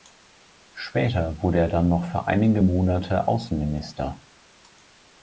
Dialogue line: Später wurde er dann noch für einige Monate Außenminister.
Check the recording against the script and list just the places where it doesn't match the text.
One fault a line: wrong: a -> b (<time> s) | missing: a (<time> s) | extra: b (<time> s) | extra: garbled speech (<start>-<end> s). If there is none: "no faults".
no faults